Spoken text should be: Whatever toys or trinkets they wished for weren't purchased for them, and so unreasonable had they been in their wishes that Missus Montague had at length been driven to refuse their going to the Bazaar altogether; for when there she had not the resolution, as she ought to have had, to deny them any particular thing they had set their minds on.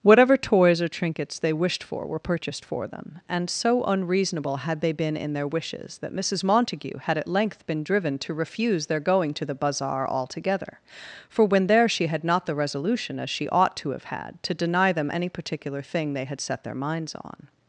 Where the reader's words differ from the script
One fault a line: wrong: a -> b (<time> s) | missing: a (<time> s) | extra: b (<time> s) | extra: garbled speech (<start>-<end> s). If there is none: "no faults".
wrong: weren't -> were (2.1 s)